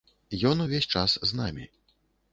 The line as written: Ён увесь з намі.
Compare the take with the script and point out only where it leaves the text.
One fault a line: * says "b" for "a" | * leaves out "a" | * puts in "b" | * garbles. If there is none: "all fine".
* puts in "час"